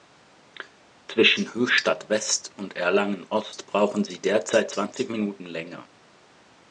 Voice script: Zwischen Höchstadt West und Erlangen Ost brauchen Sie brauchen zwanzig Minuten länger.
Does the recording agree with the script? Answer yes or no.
no